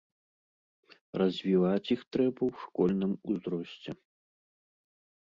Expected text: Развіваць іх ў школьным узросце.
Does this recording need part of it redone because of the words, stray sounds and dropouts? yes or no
yes